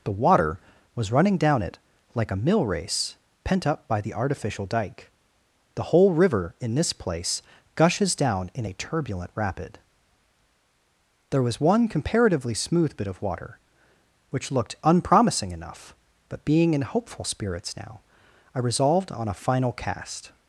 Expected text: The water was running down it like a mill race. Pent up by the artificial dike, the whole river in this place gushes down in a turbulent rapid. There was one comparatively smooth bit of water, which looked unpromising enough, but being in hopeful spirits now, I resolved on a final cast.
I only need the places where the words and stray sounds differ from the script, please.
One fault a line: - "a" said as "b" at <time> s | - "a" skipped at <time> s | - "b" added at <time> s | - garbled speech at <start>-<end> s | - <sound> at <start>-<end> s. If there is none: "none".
none